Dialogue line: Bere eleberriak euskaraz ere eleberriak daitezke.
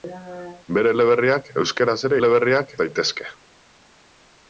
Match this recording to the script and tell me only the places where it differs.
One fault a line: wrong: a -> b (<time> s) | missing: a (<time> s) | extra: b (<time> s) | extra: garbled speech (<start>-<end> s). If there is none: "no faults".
no faults